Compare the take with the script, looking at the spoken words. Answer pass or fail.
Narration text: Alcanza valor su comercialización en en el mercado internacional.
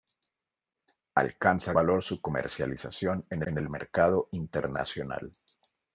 pass